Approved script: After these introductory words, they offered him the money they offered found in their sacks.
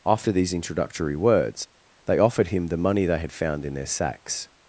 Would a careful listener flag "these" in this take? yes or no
no